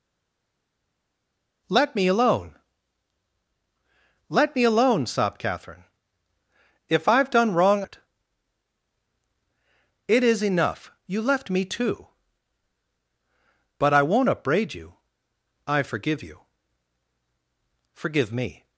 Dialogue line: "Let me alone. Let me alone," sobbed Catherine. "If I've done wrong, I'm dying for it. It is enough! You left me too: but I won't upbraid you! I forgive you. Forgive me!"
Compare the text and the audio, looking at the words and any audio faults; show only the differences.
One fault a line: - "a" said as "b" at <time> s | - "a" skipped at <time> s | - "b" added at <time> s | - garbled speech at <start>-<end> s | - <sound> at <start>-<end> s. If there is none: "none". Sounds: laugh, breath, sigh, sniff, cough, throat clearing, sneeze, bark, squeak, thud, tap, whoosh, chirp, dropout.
- "I'm dying for" skipped at 7.8 s